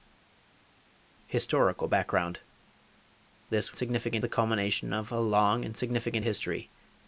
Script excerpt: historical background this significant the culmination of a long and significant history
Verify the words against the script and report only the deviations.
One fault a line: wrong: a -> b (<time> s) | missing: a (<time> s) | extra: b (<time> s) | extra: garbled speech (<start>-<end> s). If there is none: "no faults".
no faults